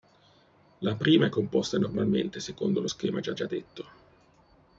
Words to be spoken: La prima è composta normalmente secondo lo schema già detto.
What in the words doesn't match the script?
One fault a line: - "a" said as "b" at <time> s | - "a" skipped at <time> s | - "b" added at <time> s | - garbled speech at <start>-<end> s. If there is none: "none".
- "già" added at 3.3 s